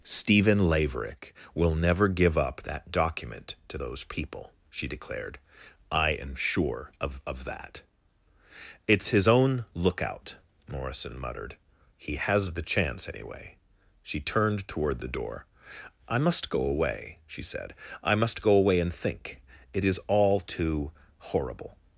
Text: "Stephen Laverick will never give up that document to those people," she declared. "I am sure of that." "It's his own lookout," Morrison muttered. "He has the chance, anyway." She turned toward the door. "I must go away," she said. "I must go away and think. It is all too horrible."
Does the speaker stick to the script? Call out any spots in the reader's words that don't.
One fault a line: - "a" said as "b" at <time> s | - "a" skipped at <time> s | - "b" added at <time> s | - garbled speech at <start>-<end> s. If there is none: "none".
- "of" added at 7.3 s